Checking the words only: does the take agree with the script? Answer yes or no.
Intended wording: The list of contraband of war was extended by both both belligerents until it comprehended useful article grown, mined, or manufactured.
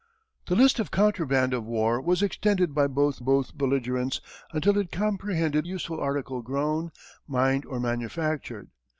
yes